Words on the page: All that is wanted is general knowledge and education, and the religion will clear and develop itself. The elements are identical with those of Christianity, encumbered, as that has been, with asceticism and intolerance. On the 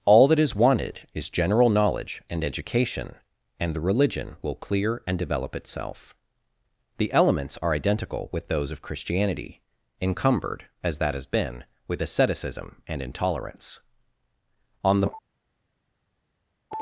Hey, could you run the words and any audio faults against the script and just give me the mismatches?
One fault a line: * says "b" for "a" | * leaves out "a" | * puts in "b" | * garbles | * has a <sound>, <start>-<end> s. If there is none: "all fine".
all fine